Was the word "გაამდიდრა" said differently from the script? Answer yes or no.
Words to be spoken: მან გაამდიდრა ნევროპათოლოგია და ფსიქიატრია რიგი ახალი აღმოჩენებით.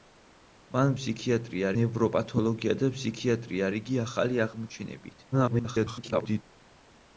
yes